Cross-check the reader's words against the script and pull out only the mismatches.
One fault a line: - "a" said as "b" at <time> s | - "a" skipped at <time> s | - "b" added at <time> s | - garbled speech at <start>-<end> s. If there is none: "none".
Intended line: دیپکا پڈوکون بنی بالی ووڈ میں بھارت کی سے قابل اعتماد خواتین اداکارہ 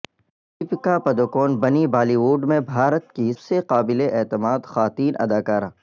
none